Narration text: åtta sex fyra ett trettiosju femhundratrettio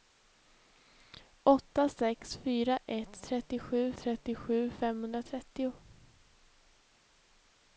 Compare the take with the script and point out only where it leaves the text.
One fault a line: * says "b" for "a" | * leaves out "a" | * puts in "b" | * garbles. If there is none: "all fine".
* puts in "trettiosju"